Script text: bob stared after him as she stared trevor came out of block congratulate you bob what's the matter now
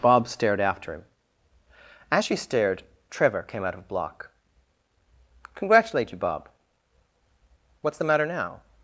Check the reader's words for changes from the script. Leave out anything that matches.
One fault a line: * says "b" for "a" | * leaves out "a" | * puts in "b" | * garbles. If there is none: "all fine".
all fine